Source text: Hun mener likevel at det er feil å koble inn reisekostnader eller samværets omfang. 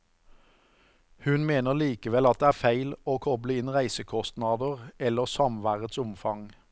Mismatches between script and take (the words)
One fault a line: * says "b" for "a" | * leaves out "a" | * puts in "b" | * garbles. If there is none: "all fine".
all fine